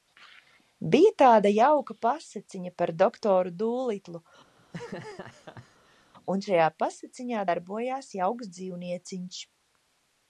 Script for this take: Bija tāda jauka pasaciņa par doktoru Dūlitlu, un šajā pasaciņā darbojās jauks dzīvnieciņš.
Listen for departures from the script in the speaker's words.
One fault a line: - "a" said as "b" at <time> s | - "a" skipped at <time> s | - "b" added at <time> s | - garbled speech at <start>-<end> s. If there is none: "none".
none